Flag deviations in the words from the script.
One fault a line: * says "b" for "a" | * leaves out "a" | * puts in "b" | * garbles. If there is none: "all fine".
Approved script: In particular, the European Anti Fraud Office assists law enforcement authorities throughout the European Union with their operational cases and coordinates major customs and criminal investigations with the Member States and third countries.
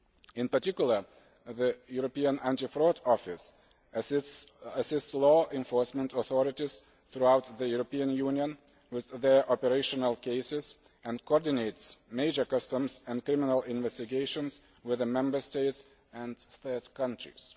all fine